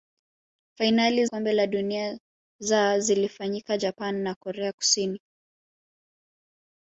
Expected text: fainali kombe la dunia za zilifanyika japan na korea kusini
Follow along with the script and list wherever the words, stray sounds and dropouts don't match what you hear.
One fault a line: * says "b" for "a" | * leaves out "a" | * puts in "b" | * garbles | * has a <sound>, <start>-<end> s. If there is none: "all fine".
all fine